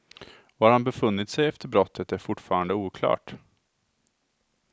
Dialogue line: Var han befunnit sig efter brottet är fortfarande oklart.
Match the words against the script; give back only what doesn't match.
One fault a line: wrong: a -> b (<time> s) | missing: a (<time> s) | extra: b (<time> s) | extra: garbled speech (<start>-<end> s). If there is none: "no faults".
no faults